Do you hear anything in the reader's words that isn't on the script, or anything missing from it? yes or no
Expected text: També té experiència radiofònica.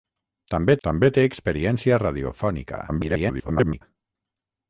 yes